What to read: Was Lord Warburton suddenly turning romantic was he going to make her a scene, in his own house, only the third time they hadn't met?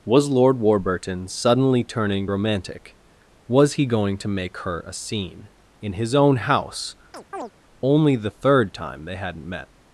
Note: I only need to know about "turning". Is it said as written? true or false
true